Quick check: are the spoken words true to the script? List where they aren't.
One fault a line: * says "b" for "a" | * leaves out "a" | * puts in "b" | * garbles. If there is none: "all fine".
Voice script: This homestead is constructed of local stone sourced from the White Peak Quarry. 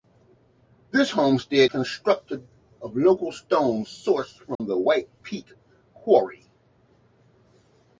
* leaves out "is"